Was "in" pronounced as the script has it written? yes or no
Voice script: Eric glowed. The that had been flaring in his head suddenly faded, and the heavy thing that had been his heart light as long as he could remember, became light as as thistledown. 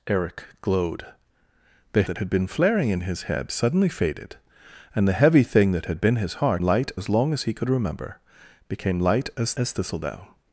yes